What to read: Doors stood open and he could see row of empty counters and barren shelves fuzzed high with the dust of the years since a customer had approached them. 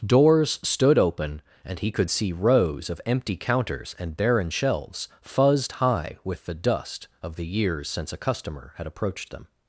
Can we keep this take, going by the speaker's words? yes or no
no